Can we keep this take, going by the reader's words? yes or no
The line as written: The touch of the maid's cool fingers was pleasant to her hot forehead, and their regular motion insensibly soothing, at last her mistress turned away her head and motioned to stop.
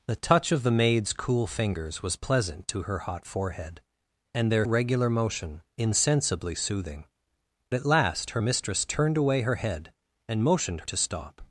yes